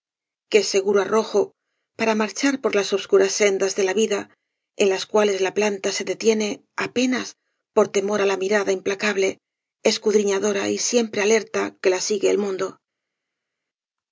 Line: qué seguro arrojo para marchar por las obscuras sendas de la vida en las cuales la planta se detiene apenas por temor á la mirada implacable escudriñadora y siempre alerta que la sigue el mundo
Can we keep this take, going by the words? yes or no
yes